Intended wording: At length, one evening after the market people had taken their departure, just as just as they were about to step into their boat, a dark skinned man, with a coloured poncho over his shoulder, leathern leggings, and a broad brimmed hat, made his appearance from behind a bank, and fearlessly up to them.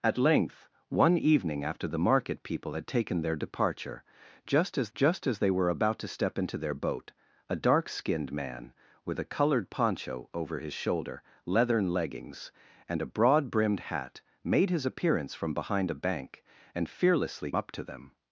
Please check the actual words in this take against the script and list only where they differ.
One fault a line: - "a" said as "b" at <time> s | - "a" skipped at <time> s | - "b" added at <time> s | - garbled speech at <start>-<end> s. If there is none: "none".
none